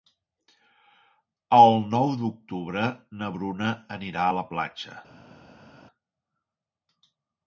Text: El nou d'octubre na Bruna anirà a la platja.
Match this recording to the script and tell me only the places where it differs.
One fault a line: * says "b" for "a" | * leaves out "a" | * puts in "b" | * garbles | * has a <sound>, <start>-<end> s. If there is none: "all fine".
all fine